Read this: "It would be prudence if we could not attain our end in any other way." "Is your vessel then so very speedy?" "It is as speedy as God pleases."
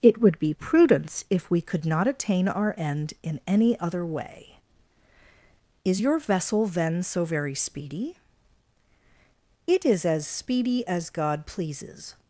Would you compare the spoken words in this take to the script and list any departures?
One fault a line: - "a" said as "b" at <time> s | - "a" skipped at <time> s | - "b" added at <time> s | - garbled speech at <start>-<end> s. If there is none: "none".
none